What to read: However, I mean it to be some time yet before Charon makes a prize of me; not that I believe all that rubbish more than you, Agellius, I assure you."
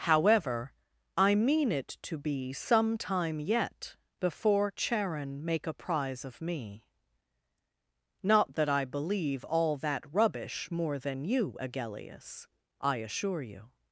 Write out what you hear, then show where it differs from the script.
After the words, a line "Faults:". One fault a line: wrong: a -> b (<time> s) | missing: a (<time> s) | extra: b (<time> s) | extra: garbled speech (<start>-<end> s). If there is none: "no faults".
However, I mean it to be some time yet before Charon make a prize of me; not that I believe all that rubbish more than you, Agellius, I assure you."
Faults:
wrong: makes -> make (5.5 s)